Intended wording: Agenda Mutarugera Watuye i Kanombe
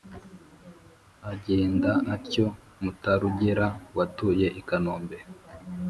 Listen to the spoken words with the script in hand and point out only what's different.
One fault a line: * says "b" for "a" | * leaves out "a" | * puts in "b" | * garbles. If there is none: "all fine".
* puts in "atyo"